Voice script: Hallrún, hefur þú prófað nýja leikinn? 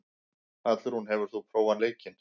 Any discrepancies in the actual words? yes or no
yes